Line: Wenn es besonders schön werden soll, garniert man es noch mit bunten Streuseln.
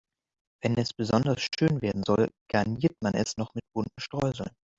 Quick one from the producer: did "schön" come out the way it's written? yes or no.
yes